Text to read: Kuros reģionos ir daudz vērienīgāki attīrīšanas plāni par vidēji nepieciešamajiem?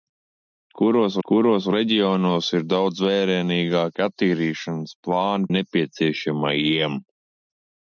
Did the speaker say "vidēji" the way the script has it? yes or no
no